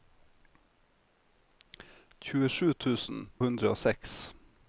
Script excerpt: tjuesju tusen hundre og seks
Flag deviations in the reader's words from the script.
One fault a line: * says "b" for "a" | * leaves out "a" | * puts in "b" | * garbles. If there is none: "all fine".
all fine